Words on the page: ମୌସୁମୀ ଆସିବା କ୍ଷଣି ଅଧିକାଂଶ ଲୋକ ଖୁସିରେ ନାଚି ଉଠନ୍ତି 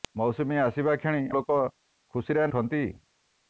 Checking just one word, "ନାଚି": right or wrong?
wrong